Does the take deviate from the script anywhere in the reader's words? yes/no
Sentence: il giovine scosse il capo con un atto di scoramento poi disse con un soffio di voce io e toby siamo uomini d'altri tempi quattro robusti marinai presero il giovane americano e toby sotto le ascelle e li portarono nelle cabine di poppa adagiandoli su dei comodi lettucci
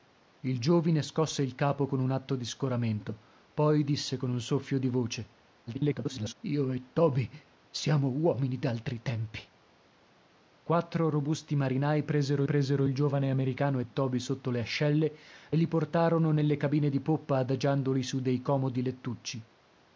yes